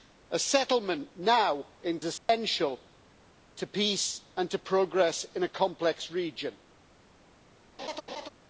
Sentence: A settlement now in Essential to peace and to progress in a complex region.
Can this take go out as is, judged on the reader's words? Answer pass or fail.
pass